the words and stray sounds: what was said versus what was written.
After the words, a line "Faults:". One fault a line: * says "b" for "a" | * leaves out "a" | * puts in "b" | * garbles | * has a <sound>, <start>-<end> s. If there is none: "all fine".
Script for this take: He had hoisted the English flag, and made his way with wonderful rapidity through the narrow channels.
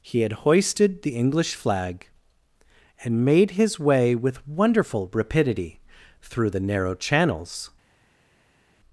He had hoisted the English flag, and made his way with wonderful rapidity through the narrow channels.
Faults:
all fine